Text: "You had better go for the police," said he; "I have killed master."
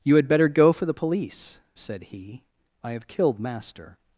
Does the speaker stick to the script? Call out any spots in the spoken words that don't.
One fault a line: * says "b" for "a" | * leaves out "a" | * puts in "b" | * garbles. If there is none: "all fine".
all fine